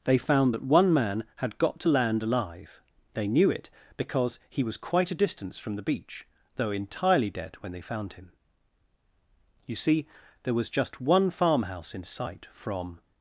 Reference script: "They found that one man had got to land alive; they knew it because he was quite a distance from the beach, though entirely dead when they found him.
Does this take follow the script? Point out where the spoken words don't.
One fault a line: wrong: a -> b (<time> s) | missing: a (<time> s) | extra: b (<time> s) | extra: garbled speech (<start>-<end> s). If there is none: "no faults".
extra: You see there was just one farmhouse in sight from (9.6 s)